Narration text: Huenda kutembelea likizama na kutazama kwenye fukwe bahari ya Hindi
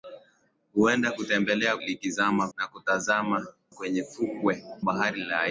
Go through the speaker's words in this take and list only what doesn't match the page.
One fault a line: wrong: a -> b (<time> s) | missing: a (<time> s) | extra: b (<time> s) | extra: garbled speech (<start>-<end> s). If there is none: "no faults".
no faults